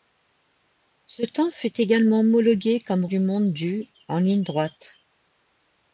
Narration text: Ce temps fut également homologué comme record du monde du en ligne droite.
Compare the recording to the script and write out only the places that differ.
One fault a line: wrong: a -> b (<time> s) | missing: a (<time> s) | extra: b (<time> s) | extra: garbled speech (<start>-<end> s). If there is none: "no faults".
missing: record (3.0 s)